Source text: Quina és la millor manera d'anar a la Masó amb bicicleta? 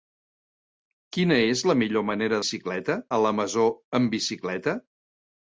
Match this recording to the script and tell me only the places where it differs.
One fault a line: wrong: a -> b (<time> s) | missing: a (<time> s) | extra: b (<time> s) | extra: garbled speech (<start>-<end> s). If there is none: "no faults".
wrong: d'anar -> bicicleta (2.4 s)